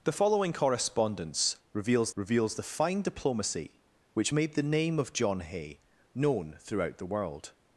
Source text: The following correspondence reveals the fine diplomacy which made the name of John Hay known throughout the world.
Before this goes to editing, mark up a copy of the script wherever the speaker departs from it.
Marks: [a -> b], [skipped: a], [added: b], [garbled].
The following correspondence reveals [added: reveals] the fine diplomacy which made the name of John Hay known throughout the world.